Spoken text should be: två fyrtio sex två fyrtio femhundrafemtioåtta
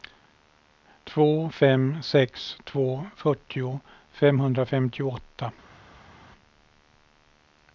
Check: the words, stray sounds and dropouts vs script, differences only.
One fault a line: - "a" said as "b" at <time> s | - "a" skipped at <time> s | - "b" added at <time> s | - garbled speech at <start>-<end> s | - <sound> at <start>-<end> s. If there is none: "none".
- "fyrtio" said as "fem" at 1.5 s